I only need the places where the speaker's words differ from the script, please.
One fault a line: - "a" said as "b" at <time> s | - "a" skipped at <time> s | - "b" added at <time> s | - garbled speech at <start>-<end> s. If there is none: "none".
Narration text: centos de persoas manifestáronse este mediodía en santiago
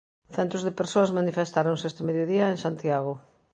none